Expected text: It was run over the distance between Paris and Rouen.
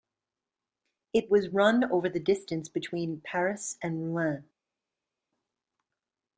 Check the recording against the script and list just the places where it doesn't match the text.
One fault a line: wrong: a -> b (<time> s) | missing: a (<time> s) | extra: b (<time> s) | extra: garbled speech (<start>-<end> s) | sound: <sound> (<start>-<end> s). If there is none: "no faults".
no faults